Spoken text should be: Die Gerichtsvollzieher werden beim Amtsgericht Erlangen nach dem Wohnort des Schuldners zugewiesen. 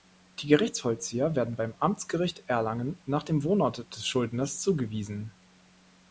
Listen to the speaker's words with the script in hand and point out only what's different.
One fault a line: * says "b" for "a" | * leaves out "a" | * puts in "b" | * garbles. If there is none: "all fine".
all fine